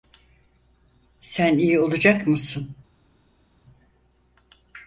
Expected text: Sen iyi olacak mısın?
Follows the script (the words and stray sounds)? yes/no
yes